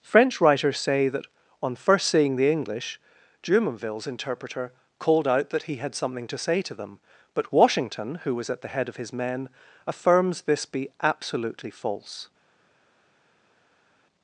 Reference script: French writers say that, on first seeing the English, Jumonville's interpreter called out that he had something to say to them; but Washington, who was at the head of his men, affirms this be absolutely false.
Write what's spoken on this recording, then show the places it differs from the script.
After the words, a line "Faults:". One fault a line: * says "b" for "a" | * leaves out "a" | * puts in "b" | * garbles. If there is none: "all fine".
French writers say that, on first seeing the English, Jumonville's interpreter called out that he had something to say to them; but Washington, who was at the head of his men, affirms this be absolutely false.
Faults:
all fine